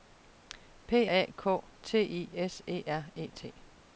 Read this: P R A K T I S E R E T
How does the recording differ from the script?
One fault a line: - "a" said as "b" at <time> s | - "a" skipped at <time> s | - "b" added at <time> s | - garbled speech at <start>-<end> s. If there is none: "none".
- "R" skipped at 1.1 s